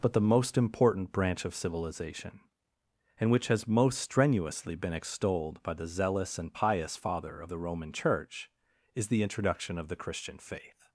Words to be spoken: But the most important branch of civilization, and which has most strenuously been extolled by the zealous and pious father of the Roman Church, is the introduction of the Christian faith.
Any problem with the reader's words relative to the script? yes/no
no